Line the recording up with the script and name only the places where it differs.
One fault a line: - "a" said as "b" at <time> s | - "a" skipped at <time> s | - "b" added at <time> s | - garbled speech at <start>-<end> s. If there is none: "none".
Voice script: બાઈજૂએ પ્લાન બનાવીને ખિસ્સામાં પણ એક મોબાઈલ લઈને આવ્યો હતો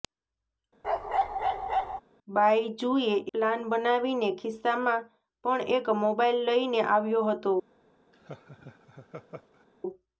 none